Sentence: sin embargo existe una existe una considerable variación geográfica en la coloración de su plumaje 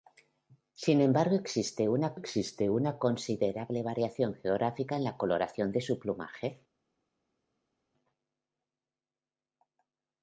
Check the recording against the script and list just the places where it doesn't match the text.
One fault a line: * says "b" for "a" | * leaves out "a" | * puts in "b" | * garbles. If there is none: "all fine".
all fine